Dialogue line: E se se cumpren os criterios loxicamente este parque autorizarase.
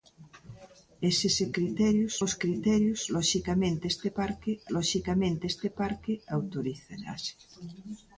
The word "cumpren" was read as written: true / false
false